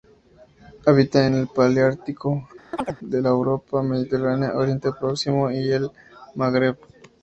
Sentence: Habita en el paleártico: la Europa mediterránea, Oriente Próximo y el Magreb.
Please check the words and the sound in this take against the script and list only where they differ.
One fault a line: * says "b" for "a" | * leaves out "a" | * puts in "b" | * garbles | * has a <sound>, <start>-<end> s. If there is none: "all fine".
* has a chirp, 2.7-3.0 s